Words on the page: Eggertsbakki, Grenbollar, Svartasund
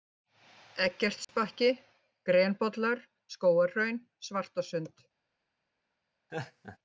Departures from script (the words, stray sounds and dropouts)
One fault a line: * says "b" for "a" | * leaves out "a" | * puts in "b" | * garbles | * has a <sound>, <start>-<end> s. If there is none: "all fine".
* has a dropout, 1.2-1.3 s
* puts in "Skógarhraun"
* has a laugh, 6.3-6.8 s